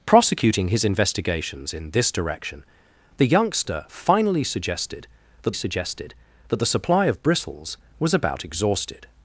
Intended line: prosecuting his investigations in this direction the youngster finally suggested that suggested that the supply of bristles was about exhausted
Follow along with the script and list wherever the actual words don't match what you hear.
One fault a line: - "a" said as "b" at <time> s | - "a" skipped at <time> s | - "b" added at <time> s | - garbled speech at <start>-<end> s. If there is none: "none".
none